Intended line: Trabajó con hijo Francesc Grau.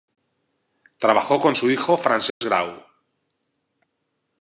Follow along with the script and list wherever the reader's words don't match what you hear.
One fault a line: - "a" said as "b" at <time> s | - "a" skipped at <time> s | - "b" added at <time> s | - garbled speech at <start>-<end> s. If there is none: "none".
- "su" added at 1.5 s